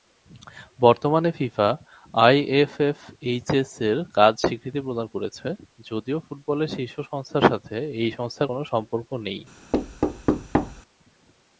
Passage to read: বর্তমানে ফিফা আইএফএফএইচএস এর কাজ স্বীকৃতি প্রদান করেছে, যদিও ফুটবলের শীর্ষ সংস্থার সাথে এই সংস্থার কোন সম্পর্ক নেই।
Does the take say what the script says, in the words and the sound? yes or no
no